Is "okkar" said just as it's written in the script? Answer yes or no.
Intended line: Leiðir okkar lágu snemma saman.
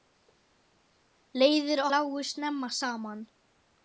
no